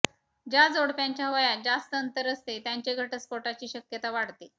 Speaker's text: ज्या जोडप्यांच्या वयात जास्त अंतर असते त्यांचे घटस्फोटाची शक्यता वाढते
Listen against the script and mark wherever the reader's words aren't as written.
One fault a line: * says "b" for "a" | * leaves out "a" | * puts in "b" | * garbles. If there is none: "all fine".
all fine